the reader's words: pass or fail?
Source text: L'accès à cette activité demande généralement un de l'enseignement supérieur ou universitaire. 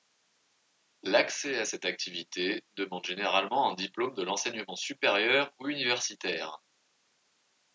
fail